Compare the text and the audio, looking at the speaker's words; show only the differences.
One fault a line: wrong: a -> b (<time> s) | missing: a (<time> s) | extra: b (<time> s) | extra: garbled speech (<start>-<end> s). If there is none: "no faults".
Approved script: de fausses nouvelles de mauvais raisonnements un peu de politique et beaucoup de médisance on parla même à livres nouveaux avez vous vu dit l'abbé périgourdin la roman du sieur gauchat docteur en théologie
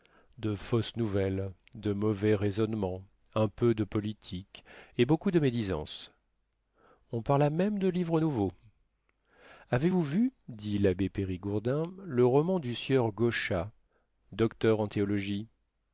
wrong: à -> de (7.8 s)
wrong: la -> le (12.0 s)